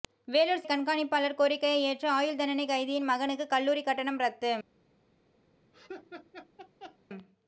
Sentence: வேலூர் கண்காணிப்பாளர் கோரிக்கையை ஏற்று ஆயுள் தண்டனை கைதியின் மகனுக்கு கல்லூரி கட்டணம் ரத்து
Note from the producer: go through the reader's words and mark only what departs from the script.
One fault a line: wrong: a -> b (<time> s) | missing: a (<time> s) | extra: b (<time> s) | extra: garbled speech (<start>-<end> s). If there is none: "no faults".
no faults